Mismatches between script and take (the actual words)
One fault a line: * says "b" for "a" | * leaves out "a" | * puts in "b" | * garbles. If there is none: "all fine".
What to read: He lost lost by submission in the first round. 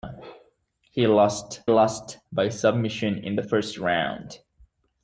all fine